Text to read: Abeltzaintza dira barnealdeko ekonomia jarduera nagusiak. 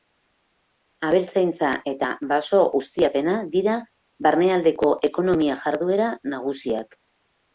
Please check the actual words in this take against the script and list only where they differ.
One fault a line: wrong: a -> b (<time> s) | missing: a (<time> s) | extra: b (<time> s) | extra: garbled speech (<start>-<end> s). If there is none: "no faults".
extra: eta baso ustiapena (1.9 s)